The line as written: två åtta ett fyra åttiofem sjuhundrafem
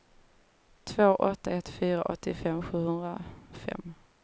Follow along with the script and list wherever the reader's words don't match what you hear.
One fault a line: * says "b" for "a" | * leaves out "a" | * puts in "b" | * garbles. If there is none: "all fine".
all fine